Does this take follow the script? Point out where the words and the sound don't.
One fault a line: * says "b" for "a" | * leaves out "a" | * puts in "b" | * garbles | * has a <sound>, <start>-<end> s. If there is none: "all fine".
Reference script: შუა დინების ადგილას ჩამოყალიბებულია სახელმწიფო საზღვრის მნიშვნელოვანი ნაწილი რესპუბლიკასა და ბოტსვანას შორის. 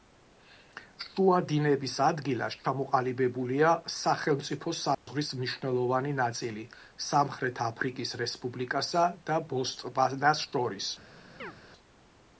* has a dropout, 4.9-5.1 s
* puts in "სამხრეთ აფრიკის"
* has a chirp, 11.4-11.5 s